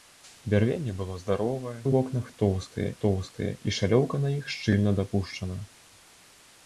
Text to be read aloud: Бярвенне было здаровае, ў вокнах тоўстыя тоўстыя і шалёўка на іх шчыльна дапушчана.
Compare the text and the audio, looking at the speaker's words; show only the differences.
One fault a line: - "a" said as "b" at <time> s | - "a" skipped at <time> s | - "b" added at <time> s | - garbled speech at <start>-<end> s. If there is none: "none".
none